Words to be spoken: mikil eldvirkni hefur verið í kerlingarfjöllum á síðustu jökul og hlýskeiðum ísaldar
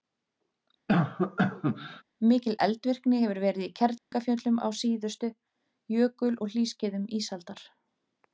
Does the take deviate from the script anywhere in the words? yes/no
no